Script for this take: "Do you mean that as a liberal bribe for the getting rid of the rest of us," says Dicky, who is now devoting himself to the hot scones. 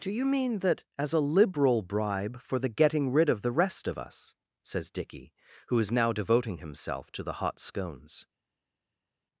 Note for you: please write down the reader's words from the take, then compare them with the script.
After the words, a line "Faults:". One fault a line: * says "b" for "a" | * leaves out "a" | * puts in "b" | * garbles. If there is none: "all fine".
"Do you mean that as a liberal bribe for the getting rid of the rest of us," says Dicky, who is now devoting himself to the hot scones.
Faults:
all fine